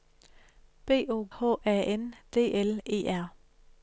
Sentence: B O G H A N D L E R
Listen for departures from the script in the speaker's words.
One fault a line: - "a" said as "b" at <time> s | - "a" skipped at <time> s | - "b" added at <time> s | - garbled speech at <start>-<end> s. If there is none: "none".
- "G" skipped at 1.3 s